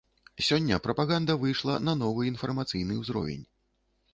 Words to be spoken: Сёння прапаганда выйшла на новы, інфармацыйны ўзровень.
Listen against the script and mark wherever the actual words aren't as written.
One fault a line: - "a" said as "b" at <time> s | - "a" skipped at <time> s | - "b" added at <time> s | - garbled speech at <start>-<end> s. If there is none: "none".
none